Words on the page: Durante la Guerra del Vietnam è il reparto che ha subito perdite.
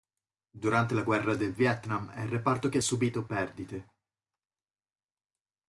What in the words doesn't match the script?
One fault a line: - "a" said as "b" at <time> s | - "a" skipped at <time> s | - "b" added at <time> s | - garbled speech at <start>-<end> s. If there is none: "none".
none